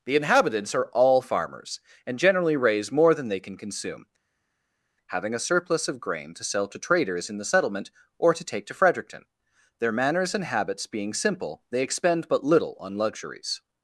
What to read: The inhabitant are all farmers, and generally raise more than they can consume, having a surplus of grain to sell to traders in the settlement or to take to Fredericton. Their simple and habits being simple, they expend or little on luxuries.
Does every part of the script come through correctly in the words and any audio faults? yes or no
no